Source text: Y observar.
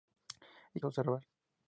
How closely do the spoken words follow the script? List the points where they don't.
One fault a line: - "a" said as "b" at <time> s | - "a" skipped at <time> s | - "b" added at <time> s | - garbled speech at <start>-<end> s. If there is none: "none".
none